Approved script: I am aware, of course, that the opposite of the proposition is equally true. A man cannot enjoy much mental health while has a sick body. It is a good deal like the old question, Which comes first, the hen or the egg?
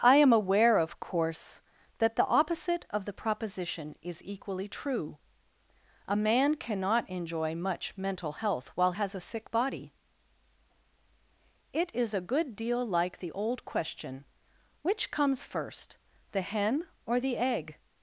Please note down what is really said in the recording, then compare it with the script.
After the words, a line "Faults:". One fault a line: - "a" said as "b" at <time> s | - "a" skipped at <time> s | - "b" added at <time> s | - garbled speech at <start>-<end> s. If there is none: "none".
I am aware, of course, that the opposite of the proposition is equally true. A man cannot enjoy much mental health while has a sick body. It is a good deal like the old question, Which comes first, the hen or the egg?
Faults:
none